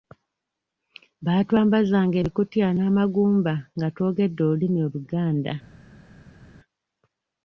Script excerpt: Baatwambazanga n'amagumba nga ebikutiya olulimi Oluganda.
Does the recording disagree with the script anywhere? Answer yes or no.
yes